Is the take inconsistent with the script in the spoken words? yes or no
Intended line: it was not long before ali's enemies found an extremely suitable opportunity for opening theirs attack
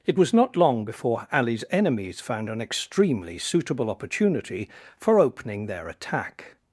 yes